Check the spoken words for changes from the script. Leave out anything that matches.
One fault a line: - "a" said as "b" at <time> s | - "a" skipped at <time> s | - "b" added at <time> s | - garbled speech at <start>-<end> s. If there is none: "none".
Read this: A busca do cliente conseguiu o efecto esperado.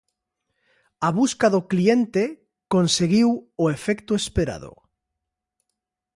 none